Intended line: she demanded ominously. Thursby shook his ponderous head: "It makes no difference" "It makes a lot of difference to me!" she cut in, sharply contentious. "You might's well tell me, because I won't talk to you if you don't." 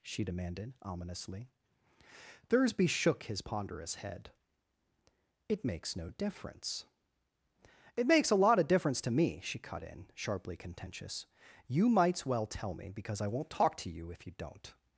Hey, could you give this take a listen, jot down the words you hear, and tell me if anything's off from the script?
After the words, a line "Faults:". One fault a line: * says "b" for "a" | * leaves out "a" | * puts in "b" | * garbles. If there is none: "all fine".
she demanded ominously. Thursby shook his ponderous head: "It makes no difference" "It makes a lot of difference to me!" she cut in, sharply contentious. "You might's well tell me, because I won't talk to you if you don't."
Faults:
all fine